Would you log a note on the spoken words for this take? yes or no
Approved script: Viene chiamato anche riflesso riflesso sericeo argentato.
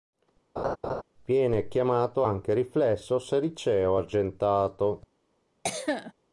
yes